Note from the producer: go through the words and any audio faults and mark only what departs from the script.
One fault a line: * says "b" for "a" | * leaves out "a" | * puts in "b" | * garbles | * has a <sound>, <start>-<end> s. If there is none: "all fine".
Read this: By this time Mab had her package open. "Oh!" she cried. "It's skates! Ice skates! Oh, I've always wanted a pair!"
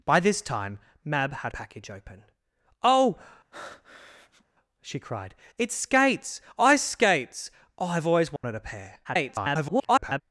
* leaves out "her"
* has a breath, 3.5-4.4 s
* has a dropout, 8.4-8.4 s
* garbles